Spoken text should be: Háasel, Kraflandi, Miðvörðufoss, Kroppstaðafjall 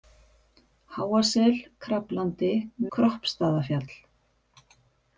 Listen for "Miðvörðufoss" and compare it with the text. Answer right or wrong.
wrong